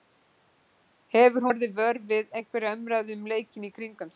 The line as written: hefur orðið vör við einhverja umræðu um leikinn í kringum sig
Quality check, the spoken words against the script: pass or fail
pass